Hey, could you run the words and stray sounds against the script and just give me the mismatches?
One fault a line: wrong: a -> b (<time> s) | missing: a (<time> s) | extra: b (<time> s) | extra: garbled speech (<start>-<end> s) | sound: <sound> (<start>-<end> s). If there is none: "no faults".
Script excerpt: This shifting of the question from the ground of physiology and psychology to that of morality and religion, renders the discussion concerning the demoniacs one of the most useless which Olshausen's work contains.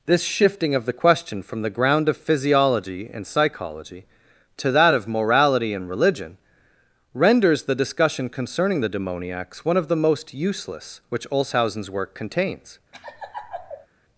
sound: laugh (12.9-13.9 s)